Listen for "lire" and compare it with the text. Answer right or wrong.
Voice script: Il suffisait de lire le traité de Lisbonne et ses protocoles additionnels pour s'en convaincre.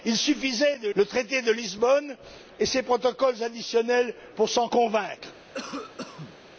wrong